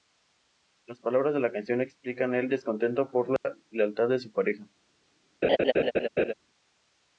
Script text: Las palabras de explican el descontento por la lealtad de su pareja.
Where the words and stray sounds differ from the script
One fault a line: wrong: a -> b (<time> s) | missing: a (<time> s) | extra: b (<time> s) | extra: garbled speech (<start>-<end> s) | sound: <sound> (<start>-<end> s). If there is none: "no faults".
extra: la canción (1.4 s)
sound: dropout (3.4-3.4 s)
sound: laugh (5.4-6.3 s)